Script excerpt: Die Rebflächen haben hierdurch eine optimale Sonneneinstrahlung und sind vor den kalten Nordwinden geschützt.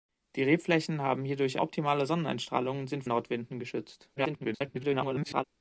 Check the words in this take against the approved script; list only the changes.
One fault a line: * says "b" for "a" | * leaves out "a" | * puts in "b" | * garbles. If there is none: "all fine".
* leaves out "eine"
* leaves out "vor den kalten"
* garbles